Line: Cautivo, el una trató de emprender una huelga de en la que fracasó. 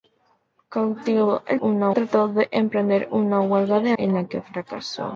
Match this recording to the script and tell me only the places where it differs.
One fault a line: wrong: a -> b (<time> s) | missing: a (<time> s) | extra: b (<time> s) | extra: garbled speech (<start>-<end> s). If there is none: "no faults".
no faults